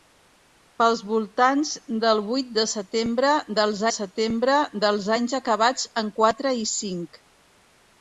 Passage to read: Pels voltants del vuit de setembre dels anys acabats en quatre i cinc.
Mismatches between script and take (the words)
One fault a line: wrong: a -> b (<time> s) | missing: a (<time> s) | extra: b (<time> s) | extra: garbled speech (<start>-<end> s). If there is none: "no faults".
extra: setembre dels (3.9 s)